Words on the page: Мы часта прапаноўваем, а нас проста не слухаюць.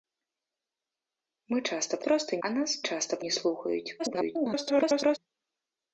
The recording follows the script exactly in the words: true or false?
false